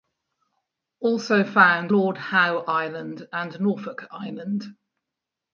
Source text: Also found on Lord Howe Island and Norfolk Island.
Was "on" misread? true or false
true